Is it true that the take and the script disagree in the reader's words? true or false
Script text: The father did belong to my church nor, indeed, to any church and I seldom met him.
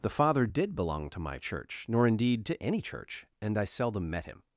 false